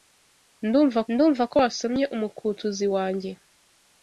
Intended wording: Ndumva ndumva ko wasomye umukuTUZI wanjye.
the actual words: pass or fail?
pass